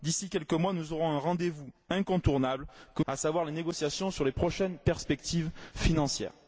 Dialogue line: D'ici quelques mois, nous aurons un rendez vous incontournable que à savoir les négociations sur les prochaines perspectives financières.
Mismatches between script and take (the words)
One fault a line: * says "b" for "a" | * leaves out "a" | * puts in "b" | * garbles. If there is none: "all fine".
all fine